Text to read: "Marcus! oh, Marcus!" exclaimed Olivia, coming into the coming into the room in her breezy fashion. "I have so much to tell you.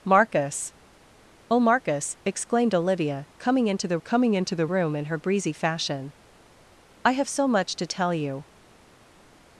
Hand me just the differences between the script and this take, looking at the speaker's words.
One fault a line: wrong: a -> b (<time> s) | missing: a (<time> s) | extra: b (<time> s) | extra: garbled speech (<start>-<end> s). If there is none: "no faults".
no faults